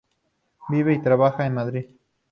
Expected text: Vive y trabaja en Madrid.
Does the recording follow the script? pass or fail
pass